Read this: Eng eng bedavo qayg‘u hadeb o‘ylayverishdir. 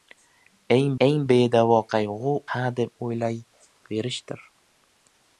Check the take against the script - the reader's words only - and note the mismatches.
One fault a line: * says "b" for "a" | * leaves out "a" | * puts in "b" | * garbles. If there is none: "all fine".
all fine